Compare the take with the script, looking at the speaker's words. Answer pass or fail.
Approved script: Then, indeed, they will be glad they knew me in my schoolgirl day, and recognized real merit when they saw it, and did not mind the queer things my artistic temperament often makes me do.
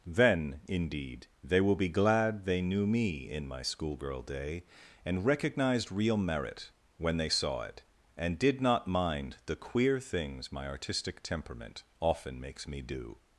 pass